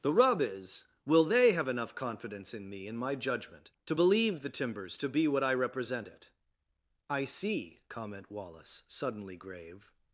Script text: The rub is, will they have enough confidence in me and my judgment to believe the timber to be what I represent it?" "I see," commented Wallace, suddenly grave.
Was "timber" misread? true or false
true